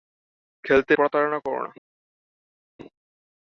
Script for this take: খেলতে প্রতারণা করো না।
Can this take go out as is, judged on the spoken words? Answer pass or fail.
pass